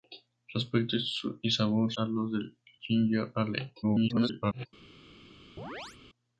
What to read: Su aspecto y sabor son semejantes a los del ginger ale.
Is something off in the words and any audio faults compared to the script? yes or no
yes